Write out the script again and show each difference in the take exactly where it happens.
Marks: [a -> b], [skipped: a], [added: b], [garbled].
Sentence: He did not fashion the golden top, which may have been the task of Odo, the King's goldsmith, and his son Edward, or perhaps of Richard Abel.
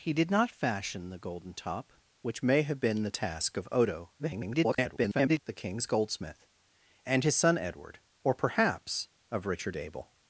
He did not fashion the golden top, which may have been the task of Odo, [garbled] the King's goldsmith, and his son Edward, or perhaps of Richard Abel.